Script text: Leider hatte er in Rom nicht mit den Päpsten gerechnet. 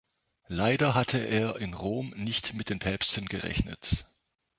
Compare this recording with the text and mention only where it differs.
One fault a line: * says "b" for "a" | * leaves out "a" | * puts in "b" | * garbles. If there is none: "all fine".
all fine